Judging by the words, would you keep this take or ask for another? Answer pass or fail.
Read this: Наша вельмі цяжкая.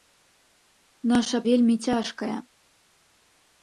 pass